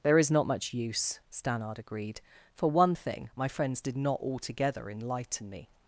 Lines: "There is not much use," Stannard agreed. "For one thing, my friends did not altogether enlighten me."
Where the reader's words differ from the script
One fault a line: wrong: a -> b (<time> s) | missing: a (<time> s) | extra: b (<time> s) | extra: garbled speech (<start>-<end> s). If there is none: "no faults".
no faults